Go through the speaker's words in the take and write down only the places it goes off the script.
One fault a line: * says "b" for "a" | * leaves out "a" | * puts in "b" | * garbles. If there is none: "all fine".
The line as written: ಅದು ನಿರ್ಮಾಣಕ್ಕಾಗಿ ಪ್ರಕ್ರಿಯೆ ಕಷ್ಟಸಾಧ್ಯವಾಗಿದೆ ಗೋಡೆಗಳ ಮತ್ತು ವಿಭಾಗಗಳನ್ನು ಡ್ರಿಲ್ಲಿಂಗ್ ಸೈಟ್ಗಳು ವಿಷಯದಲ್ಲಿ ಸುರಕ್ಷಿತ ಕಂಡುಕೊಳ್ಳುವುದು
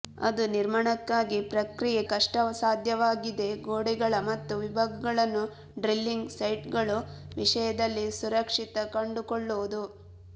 all fine